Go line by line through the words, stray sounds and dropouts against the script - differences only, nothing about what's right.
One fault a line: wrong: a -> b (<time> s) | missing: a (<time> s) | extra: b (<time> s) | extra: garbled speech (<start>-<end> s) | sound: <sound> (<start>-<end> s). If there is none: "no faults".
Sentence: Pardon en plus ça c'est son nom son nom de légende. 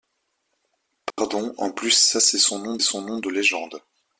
sound: dropout (1.1-1.2 s)